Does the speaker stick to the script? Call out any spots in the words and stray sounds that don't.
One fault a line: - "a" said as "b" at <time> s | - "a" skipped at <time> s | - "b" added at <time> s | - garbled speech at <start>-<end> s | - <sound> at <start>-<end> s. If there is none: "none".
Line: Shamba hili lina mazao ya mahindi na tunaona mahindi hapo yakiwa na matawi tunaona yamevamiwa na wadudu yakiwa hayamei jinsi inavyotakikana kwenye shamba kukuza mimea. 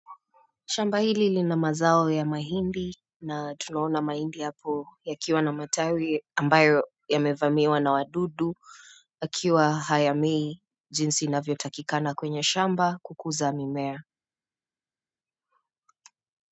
- "tunaona" said as "ambayo" at 6.4 s